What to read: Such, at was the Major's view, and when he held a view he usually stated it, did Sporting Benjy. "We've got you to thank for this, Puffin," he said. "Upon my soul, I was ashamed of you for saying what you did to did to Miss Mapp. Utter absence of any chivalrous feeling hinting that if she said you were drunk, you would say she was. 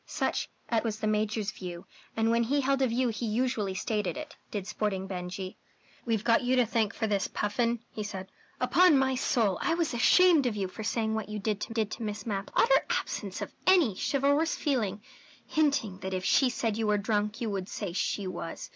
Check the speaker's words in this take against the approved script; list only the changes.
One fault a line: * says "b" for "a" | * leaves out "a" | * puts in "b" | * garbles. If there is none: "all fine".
all fine